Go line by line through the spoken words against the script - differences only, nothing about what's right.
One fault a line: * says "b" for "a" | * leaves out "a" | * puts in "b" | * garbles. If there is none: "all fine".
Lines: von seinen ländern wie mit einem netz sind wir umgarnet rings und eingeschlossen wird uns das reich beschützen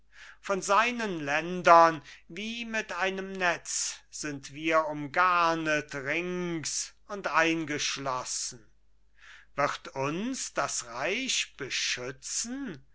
all fine